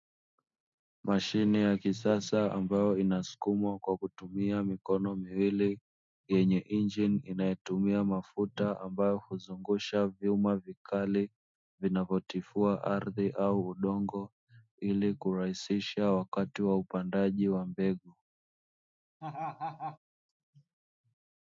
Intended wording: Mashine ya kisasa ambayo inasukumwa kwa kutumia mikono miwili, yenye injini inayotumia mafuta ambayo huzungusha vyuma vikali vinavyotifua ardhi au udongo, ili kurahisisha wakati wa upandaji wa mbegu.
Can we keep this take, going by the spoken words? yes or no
yes